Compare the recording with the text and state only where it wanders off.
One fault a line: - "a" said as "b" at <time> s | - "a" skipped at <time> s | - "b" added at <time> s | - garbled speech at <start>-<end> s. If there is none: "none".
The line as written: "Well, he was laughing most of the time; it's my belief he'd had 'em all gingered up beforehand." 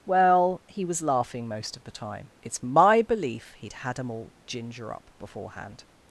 - "gingered" said as "ginger" at 4.5 s